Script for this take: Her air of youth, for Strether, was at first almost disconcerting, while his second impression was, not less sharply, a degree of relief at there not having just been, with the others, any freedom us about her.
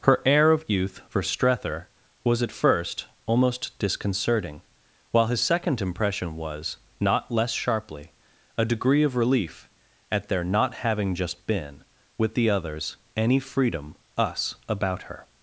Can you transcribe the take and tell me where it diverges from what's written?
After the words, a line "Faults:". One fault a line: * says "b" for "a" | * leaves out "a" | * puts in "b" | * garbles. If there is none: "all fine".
Her air of youth, for Strether, was at first almost disconcerting, while his second impression was, not less sharply, a degree of relief at there not having just been, with the others, any freedom us about her.
Faults:
all fine